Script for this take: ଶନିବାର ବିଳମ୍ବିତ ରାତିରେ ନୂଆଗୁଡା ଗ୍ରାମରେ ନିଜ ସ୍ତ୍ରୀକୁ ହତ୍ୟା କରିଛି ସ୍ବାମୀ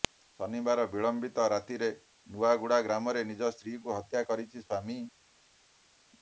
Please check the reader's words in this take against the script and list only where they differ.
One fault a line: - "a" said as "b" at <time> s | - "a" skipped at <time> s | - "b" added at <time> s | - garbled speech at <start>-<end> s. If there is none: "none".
none